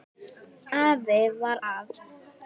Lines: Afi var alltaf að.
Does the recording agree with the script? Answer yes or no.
no